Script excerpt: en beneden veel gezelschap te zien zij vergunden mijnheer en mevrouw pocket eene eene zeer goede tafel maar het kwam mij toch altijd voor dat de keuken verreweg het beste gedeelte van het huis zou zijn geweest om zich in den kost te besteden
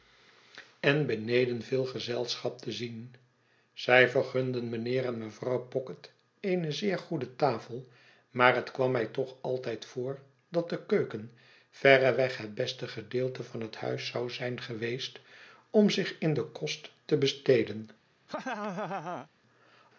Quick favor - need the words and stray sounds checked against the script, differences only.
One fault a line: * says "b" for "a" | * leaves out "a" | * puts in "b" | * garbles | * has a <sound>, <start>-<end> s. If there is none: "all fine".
* leaves out "eene"
* has a laugh, 18.3-19.3 s